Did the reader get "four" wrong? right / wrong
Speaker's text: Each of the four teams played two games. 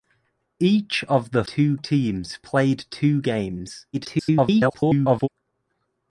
wrong